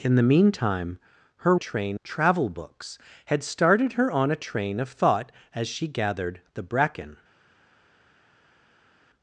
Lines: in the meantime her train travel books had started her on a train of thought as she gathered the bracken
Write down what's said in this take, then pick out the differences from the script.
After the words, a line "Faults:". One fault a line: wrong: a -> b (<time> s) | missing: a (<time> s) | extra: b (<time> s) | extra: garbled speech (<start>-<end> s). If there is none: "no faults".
in the meantime her train travel books had started her on a train of thought as she gathered the bracken
Faults:
no faults